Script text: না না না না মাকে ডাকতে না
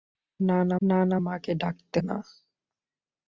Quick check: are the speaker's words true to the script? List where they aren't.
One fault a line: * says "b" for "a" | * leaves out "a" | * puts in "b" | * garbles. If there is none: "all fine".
all fine